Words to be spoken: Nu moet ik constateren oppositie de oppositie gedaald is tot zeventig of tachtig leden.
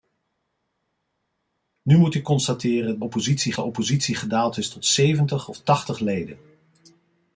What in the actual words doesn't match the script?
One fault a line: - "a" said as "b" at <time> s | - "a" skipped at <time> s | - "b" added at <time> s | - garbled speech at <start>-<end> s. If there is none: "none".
none